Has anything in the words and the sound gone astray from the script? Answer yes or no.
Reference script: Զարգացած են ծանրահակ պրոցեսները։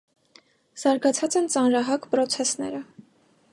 no